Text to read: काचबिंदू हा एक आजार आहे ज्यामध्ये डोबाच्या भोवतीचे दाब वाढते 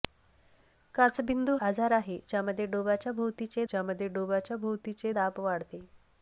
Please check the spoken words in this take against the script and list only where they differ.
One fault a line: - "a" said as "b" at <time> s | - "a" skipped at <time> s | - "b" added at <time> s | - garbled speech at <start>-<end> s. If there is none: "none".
- "हा एक आजार आहे" said as "आजार आहे ज्यामध्ये डोबाच्या भोवतीचे" at 1.6 s